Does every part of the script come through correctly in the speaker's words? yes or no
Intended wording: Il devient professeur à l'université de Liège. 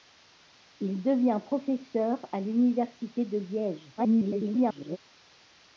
no